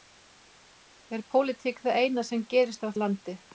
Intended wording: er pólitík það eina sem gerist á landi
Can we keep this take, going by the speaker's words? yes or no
yes